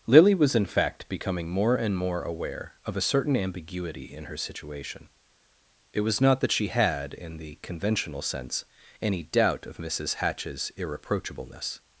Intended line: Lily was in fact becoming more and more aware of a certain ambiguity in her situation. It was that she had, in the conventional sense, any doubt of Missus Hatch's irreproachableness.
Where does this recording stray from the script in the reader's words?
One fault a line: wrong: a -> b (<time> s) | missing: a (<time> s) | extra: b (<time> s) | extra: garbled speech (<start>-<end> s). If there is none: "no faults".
extra: not (6.2 s)